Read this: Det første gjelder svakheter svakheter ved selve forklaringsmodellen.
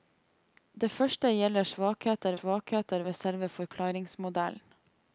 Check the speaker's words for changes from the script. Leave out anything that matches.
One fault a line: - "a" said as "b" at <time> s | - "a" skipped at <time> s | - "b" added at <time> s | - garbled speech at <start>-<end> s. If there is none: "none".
none